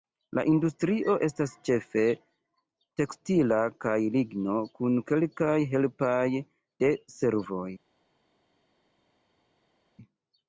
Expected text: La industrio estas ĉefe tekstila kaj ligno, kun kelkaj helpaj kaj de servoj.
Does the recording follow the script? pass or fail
fail